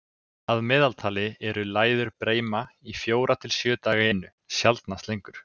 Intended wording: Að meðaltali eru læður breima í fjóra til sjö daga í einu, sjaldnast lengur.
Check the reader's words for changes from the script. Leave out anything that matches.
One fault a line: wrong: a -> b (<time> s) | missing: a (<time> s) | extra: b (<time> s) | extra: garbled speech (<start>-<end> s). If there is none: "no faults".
missing: í (4.1 s)